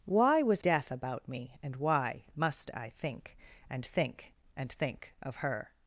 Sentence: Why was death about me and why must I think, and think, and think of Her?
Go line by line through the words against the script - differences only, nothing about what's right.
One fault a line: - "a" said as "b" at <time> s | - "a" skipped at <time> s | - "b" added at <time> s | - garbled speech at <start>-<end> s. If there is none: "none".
none